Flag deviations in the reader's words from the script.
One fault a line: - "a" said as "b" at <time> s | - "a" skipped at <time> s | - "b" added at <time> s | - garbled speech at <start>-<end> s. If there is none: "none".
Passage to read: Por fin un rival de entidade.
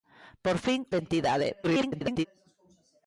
- "un rival" skipped at 0.9 s
- garbled speech at 1.6-2.3 s